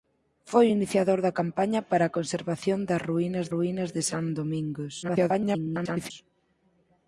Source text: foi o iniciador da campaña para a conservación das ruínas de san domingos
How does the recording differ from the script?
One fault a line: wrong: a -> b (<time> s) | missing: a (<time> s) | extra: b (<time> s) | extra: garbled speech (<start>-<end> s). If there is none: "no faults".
extra: ruínas (3.5 s)
extra: garbled speech (5.0-6.1 s)